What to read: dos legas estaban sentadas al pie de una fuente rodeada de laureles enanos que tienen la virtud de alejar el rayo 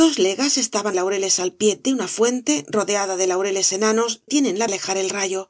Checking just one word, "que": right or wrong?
wrong